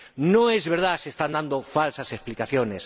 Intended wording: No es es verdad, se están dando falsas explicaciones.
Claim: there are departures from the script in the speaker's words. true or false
true